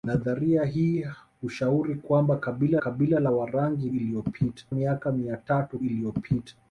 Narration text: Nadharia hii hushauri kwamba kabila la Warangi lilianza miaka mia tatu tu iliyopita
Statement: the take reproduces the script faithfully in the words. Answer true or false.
false